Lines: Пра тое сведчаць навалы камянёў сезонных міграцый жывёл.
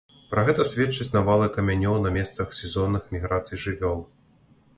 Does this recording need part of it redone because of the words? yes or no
yes